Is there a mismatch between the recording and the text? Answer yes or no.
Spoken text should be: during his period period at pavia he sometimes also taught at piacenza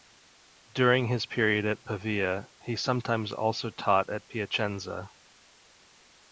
yes